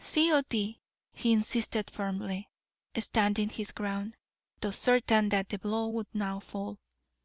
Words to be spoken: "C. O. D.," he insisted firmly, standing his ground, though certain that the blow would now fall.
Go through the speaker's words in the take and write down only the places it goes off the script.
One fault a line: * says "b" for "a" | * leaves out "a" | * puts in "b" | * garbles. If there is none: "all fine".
all fine